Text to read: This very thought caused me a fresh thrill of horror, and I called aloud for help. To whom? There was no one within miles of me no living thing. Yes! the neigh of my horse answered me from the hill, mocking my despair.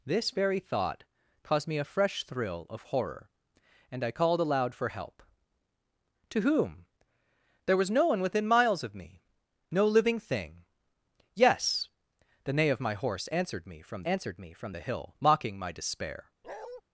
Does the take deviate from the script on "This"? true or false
false